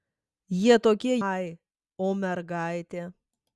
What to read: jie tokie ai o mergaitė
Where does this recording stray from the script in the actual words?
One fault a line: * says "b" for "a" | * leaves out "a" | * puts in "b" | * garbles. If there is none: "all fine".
all fine